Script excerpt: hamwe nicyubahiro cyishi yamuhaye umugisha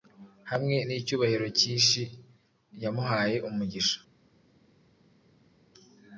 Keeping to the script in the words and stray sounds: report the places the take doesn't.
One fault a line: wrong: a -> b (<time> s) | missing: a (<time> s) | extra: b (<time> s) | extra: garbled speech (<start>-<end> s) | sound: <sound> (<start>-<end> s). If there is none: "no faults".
no faults